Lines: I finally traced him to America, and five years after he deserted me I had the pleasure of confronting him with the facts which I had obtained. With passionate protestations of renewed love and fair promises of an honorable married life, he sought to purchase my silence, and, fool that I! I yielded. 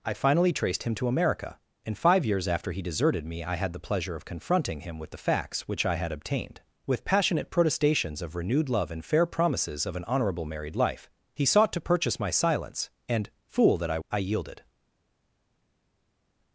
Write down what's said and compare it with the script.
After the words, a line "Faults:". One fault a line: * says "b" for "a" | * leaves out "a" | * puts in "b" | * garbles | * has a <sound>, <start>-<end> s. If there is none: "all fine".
I finally traced him to America, and five years after he deserted me I had the pleasure of confronting him with the facts which I had obtained. With passionate protestations of renewed love and fair promises of an honorable married life, he sought to purchase my silence, and, fool that I! I yielded.
Faults:
all fine